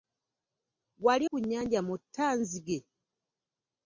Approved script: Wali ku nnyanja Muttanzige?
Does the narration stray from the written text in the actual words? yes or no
no